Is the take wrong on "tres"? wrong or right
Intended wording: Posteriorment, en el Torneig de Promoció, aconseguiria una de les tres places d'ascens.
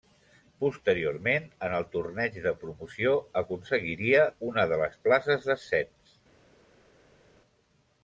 wrong